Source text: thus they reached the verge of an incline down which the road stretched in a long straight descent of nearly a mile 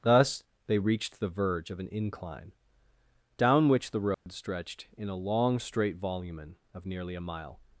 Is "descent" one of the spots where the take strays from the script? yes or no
yes